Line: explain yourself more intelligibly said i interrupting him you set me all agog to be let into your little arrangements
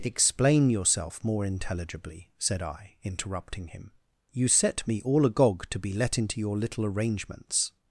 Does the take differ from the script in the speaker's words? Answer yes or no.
no